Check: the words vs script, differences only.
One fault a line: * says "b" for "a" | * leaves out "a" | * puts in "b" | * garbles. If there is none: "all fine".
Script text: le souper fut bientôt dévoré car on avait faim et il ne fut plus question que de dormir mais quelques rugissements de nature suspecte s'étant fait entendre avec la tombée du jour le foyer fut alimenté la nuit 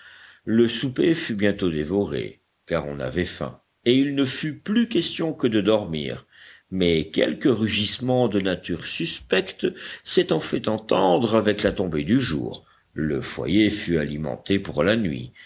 * puts in "pour"